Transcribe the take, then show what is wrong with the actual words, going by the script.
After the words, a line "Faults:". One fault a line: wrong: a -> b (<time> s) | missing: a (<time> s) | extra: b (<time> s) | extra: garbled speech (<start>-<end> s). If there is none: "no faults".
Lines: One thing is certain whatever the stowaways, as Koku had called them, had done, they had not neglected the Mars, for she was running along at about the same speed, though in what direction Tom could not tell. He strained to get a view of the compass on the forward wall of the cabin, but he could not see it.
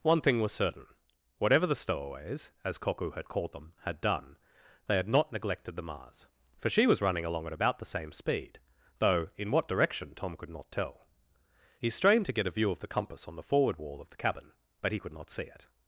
One thing was certain whatever the stowaways, as Koku had called them, had done, they had not neglected the Mars, for she was running along at about the same speed, though in what direction Tom could not tell. He strained to get a view of the compass on the forward wall of the cabin, but he could not see it.
Faults:
wrong: is -> was (0.4 s)